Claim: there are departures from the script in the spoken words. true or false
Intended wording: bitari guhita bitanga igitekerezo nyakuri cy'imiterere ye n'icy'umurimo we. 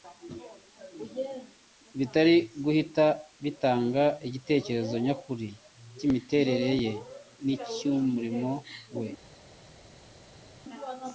false